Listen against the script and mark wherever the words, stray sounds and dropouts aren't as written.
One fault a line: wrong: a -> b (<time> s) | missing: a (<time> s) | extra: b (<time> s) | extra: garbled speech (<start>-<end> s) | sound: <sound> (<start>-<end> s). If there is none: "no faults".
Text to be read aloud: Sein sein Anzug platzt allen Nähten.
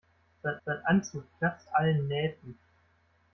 no faults